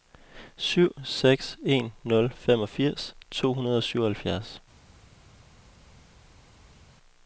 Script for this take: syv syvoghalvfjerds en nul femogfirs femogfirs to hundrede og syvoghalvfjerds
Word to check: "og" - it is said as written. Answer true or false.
true